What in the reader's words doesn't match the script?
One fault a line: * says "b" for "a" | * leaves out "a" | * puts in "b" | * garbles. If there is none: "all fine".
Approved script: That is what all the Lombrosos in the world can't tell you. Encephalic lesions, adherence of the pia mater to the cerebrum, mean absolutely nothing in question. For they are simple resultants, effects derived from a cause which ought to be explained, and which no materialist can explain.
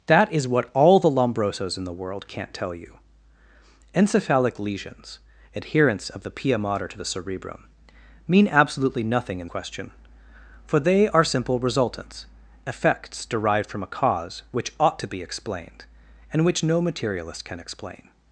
all fine